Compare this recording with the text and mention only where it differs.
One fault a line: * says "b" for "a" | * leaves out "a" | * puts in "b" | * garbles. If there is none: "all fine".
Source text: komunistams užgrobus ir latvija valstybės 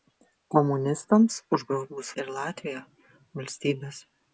all fine